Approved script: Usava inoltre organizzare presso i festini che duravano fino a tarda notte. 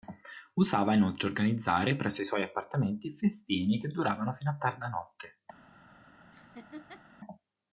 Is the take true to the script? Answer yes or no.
no